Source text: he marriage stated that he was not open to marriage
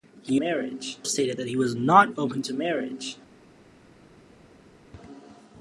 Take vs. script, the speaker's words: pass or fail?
pass